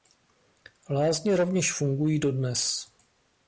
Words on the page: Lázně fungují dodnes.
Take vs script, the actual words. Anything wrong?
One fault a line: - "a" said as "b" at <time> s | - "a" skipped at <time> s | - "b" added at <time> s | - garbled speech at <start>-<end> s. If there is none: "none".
- "rovněž" added at 1.4 s